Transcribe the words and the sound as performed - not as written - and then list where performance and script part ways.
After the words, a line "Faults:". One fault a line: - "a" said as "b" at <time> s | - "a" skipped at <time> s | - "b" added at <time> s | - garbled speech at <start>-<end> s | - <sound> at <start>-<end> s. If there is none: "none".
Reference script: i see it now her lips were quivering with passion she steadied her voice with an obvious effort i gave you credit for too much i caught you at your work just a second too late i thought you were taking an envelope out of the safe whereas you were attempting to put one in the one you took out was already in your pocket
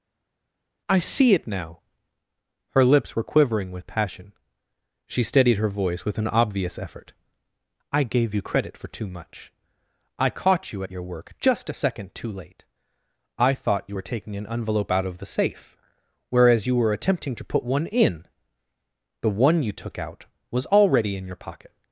i see it now her lips were quivering with passion she steadied her voice with an obvious effort i gave you credit for too much i caught you at your work just a second too late i thought you were taking an envelope out of the safe whereas you were attempting to put one in the one you took out was already in your pocket
Faults:
none